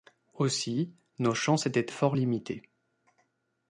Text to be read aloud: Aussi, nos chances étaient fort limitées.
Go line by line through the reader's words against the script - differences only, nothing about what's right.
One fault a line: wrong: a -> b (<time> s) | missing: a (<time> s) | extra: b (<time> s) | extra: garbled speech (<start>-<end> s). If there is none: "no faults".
no faults